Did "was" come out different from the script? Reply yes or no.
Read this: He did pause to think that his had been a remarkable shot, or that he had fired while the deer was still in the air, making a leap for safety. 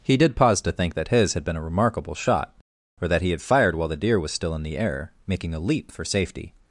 no